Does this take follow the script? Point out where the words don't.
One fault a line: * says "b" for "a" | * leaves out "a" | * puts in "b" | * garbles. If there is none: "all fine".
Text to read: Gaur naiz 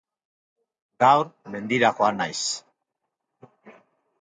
* puts in "mendira joan"